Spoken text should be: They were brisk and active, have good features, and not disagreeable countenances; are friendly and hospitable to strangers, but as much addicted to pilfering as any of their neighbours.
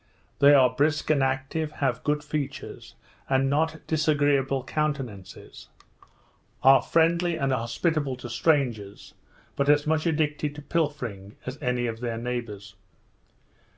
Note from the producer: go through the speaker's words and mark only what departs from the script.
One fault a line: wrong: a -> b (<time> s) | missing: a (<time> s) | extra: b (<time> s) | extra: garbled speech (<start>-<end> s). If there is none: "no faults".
wrong: were -> are (0.6 s)